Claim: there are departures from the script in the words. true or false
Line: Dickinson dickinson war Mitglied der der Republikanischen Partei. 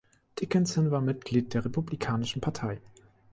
true